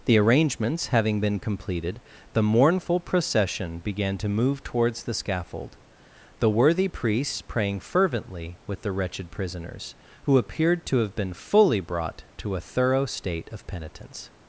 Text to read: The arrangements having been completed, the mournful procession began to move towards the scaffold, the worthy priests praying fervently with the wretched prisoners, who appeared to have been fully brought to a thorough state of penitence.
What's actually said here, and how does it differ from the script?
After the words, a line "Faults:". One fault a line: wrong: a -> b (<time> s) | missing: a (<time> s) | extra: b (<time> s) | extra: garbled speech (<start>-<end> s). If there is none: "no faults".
The arrangements having been completed, the mournful procession began to move towards the scaffold, the worthy priests praying fervently with the wretched prisoners, who appeared to have been fully brought to a thorough state of penitence.
Faults:
no faults